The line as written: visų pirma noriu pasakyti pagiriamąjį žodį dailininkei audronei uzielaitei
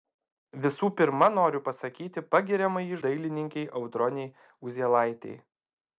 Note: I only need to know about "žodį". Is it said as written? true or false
false